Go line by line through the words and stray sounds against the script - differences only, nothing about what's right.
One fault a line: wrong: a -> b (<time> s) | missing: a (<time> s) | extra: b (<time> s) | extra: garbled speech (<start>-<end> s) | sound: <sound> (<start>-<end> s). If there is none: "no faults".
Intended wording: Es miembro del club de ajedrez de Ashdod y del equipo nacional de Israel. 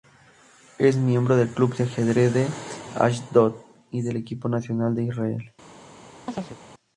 sound: chirp (6.3-6.6 s)